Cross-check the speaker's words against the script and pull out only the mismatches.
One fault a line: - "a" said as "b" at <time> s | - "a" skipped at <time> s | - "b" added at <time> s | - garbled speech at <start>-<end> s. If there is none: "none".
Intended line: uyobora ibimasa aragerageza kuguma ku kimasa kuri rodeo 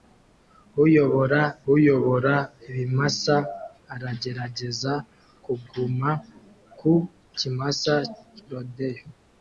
- "uyobora" added at 1.7 s
- "kuri" skipped at 7.9 s